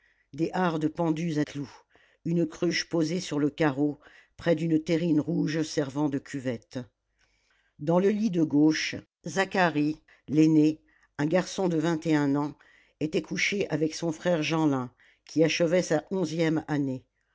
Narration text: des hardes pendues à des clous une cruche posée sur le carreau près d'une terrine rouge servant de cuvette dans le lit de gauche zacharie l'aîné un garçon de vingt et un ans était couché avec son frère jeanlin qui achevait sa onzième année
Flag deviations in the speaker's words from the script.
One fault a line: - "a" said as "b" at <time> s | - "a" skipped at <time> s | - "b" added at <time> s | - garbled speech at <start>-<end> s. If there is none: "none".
- "des" skipped at 1.4 s